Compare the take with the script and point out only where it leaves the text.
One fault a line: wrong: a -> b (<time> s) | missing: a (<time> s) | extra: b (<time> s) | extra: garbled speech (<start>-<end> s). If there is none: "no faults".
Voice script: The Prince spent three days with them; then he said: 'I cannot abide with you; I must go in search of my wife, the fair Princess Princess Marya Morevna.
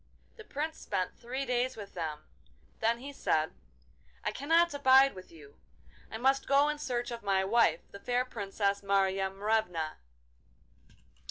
missing: Princess (8.8 s)